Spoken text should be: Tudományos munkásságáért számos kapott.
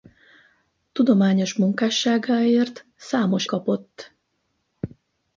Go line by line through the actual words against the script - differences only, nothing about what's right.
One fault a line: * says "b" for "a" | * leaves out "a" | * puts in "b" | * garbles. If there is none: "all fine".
all fine